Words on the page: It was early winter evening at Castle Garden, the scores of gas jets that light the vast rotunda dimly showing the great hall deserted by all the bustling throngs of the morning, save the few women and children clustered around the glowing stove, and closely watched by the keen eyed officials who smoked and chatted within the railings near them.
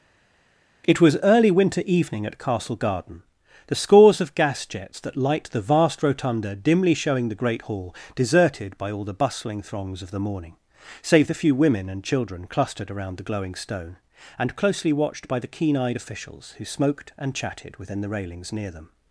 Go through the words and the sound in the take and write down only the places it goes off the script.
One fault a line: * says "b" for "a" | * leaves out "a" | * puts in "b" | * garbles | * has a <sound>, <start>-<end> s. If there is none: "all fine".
* says "stone" for "stove"